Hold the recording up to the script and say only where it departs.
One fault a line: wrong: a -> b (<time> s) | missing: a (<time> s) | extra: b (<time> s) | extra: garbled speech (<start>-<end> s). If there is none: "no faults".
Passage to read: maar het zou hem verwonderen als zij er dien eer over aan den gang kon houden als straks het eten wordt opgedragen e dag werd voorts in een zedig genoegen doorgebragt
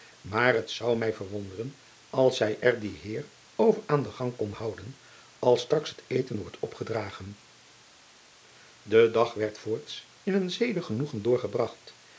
wrong: hem -> mij (1.0 s)